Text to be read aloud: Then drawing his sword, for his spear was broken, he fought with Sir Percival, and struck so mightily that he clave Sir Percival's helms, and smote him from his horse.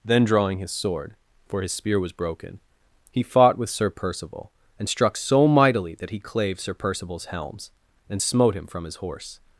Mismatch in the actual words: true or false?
false